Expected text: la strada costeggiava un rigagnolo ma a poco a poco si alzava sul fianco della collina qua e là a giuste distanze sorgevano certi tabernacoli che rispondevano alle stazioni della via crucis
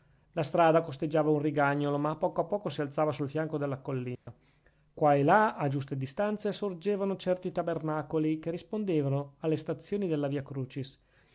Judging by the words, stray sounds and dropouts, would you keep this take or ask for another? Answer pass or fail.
fail